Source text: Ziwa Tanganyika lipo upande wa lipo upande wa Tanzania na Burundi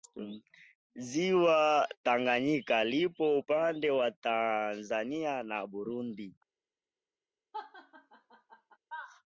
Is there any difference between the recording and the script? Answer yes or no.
yes